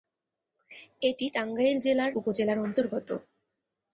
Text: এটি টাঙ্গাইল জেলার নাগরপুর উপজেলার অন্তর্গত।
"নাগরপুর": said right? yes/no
no